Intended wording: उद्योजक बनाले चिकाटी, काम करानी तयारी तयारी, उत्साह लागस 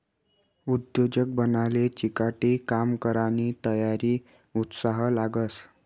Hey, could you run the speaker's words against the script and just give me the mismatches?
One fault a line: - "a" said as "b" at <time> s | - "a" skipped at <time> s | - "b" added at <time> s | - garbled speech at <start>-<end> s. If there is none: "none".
- "तयारी" skipped at 4.2 s